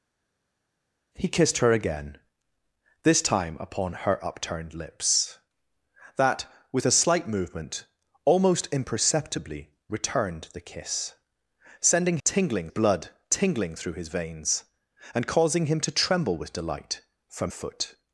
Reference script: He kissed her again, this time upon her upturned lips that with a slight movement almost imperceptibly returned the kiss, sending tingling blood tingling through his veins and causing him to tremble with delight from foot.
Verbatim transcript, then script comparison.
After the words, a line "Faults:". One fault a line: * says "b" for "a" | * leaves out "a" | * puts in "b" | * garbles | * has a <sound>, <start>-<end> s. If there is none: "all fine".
He kissed her again, this time upon her upturned lips that with a slight movement almost imperceptibly returned the kiss, sending tingling blood tingling through his veins and causing him to tremble with delight from foot.
Faults:
all fine